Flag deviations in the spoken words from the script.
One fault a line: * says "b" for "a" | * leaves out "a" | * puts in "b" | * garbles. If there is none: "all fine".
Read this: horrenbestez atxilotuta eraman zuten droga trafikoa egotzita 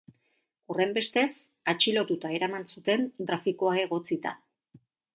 * leaves out "droga"